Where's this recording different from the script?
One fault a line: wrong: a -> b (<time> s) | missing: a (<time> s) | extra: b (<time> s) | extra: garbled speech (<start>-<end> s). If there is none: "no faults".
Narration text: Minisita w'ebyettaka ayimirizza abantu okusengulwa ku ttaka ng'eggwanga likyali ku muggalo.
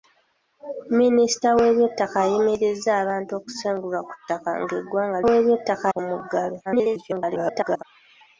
wrong: likyali -> w'ebyettaka (5.3 s)
extra: garbled speech (6.6-7.8 s)